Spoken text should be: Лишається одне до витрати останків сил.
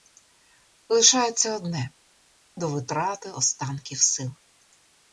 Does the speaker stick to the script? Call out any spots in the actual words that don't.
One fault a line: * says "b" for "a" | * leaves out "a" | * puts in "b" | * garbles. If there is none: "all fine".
all fine